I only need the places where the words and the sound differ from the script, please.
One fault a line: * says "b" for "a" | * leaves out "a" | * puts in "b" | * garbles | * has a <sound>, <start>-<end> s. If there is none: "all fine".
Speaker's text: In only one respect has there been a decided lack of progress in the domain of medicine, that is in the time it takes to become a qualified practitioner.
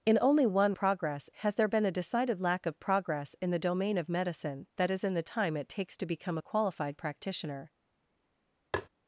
* says "progress" for "respect"
* has a tap, 8.7-8.9 s